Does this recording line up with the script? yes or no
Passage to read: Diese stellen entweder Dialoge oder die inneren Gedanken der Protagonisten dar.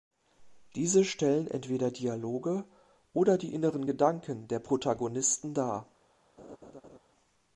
yes